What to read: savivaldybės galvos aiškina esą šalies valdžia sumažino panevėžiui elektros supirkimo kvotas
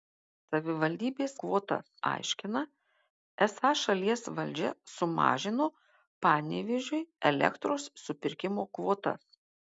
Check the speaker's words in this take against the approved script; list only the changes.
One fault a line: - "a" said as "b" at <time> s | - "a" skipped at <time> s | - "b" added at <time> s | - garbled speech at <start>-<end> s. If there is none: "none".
- "galvos" said as "kvotas" at 1.5 s